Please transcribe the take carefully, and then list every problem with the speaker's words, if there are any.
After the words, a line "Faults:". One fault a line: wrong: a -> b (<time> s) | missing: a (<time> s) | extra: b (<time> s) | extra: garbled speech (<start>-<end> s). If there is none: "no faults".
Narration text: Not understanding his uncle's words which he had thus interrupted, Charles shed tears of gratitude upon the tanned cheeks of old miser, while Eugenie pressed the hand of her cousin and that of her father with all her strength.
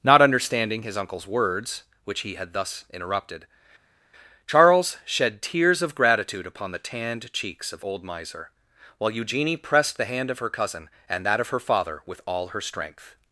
Not understanding his uncle's words which he had thus interrupted, Charles shed tears of gratitude upon the tanned cheeks of old miser, while Eugenie pressed the hand of her cousin and that of her father with all her strength.
Faults:
no faults